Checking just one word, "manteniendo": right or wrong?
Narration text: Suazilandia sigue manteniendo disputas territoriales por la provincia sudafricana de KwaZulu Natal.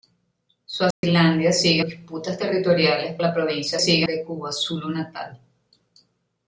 wrong